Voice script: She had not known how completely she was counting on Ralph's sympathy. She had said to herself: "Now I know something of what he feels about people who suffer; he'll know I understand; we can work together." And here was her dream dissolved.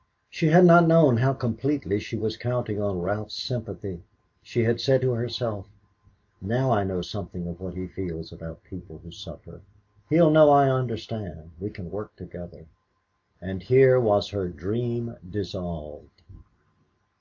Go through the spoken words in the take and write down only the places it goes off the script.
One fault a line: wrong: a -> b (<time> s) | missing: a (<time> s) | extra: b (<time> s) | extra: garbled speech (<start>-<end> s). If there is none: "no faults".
no faults